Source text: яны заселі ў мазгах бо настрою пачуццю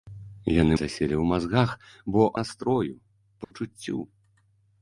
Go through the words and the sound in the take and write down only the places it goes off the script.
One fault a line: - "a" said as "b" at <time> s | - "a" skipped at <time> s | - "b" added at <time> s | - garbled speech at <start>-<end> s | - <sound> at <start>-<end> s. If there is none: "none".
- dropout at 3.4-3.5 s